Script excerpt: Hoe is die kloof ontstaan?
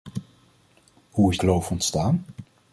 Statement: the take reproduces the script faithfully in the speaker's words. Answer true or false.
false